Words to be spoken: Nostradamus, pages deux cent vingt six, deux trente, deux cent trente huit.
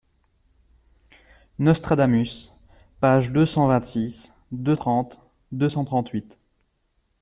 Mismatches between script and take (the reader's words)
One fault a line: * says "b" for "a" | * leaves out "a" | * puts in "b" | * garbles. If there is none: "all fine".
all fine